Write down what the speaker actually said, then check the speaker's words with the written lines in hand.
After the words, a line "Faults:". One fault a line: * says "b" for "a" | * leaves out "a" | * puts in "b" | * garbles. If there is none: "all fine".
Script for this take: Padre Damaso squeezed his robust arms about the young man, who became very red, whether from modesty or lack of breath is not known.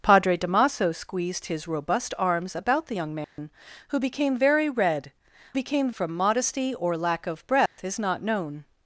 Padre Damaso squeezed his robust arms about the young man, who became very red, became from modesty or lack of breath is not known.
Faults:
* says "became" for "whether"